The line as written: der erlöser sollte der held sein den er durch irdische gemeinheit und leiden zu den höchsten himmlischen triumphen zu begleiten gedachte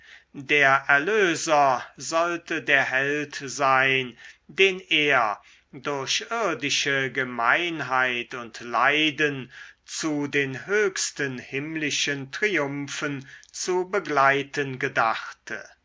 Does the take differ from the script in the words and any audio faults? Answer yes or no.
no